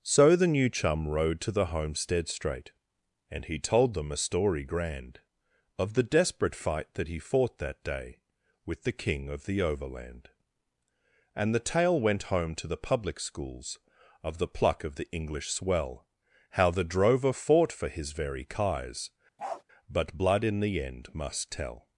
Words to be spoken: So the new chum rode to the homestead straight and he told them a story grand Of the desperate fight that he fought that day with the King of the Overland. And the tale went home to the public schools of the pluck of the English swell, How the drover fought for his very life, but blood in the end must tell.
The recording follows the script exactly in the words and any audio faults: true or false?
false